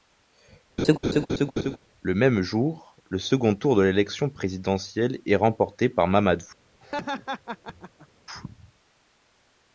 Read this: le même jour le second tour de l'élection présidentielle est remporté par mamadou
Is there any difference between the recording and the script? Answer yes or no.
no